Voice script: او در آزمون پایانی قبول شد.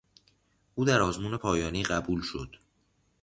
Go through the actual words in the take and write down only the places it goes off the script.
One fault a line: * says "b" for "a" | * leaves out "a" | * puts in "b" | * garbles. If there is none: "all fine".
all fine